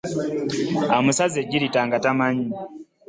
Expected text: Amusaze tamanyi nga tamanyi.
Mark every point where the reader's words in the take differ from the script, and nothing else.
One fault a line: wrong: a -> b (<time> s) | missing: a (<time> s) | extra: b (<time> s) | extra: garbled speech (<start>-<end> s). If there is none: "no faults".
wrong: tamanyi -> ejjirita (1.4 s)